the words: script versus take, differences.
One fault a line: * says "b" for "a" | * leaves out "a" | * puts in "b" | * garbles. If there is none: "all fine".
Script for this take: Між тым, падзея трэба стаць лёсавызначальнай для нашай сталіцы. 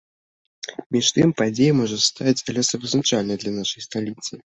* says "можа" for "трэба"